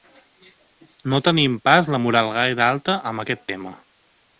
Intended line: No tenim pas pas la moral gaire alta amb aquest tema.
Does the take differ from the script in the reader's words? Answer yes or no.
yes